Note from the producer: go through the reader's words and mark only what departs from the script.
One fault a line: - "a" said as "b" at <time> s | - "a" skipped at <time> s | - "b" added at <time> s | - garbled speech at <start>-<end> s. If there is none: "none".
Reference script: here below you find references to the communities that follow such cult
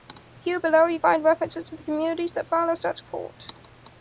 none